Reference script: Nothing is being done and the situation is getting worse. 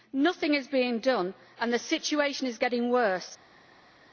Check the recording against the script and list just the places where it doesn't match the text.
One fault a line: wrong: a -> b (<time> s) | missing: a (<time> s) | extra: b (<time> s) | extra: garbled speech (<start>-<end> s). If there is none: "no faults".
no faults